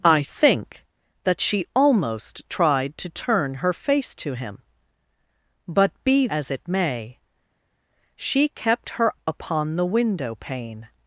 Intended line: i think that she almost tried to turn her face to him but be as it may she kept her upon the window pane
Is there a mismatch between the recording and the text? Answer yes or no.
no